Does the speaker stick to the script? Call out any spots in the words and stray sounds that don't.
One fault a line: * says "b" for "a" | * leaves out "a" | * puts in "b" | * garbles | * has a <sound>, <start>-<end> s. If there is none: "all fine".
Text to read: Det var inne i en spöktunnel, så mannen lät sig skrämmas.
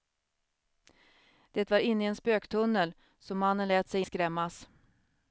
all fine